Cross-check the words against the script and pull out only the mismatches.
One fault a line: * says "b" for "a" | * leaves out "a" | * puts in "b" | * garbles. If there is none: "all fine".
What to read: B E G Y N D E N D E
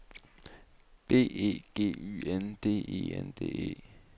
all fine